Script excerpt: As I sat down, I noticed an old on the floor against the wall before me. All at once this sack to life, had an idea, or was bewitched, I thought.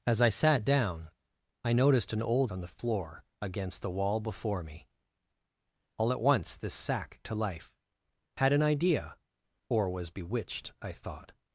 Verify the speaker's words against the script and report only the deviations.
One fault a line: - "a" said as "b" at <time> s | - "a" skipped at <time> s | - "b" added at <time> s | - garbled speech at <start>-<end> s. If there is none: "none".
none